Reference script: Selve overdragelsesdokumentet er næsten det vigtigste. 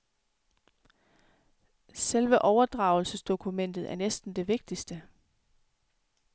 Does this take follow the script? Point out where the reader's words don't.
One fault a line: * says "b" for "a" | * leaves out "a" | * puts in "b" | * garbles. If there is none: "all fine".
all fine